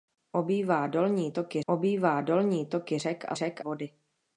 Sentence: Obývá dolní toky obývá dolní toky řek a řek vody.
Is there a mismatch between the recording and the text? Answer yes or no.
no